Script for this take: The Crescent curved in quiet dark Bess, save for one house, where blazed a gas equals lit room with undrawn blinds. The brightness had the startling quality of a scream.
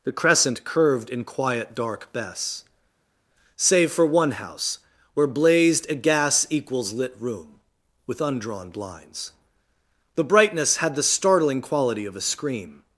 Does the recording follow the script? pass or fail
pass